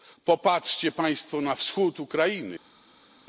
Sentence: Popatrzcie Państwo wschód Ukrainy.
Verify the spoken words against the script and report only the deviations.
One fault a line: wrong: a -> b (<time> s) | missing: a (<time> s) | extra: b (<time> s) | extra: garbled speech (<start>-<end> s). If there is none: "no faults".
extra: na (1.4 s)